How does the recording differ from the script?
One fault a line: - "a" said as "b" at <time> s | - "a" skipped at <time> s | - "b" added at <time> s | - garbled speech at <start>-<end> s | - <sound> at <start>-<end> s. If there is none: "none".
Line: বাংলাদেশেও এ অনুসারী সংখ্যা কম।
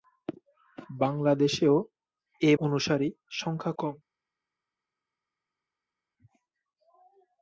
none